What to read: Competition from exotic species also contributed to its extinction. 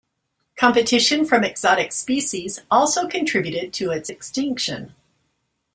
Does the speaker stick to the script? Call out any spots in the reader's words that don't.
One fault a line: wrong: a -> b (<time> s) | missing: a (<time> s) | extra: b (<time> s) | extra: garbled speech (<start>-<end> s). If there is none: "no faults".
no faults